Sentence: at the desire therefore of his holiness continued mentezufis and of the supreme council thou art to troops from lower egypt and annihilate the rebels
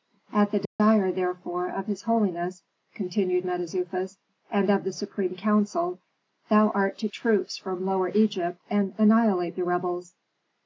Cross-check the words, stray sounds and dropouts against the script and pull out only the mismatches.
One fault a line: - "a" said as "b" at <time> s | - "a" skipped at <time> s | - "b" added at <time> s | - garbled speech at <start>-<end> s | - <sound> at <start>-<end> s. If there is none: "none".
- dropout at 0.6-0.8 s